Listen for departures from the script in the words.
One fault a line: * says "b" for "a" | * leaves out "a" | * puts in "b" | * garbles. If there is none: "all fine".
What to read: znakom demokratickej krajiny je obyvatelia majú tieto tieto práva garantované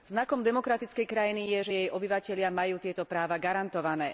* puts in "že jej"
* leaves out "tieto"